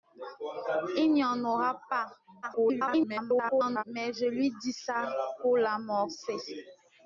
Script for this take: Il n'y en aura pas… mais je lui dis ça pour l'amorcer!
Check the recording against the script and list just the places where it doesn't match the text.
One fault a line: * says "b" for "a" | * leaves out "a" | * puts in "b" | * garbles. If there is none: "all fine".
* garbles